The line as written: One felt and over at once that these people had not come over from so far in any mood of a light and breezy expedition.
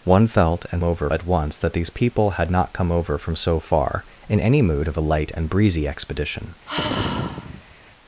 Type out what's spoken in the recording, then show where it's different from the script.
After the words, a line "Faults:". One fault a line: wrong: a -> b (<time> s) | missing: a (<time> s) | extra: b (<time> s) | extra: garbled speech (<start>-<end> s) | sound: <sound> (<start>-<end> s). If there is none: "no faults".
One felt and over at once that these people had not come over from so far in any mood of a light and breezy expedition.
Faults:
sound: sigh (6.7-7.7 s)